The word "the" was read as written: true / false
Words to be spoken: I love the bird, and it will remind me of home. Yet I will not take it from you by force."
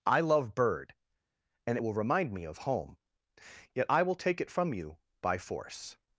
false